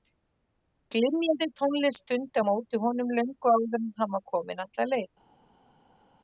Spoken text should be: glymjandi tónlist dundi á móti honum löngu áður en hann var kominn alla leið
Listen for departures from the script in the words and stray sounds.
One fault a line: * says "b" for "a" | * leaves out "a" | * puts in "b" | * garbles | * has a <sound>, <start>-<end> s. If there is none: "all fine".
all fine